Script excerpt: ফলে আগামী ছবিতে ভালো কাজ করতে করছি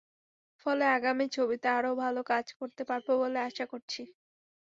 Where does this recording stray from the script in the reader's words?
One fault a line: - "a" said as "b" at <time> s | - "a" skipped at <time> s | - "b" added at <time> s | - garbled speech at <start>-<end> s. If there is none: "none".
- "আরও" added at 1.7 s
- "পারব বলে আশা" added at 2.9 s